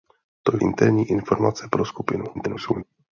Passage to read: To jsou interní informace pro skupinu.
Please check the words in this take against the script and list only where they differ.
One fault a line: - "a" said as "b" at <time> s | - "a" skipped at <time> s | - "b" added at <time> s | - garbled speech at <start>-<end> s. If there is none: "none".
- "jsou" skipped at 0.6 s
- garbled speech at 2.3-2.8 s